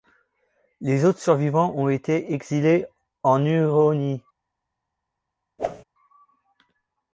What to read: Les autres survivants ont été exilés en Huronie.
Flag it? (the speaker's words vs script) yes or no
no